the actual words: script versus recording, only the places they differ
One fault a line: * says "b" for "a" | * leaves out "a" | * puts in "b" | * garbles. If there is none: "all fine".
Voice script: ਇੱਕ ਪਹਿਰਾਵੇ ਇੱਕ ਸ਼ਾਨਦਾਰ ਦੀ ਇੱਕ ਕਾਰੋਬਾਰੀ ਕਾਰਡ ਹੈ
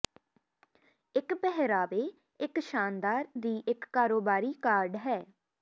all fine